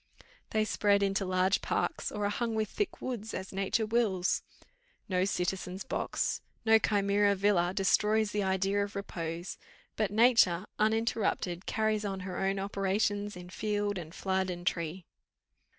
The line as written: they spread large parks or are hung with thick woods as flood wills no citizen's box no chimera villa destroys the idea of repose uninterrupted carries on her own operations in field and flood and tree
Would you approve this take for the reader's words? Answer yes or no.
no